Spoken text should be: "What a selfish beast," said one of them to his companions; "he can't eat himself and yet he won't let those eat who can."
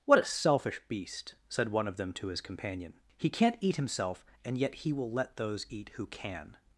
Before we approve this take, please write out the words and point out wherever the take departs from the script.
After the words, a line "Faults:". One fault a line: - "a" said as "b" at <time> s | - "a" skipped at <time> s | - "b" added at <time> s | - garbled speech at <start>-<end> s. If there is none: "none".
"What a selfish beast," said one of them to his companion; "he can't eat himself and yet he will let those eat who can."
Faults:
- "companions" said as "companion" at 2.4 s
- "won't" said as "will" at 4.9 s